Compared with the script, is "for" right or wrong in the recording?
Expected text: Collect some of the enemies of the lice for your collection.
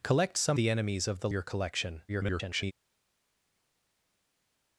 wrong